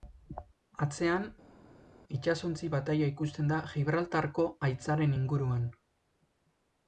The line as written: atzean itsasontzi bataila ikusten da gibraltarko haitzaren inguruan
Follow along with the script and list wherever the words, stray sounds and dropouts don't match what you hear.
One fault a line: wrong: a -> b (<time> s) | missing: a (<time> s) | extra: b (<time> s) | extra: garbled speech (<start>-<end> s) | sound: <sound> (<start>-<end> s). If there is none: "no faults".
no faults